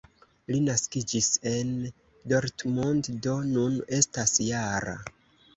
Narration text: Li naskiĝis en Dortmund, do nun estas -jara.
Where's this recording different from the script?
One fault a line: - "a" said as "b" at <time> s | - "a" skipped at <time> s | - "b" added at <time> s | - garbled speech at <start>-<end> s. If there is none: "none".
none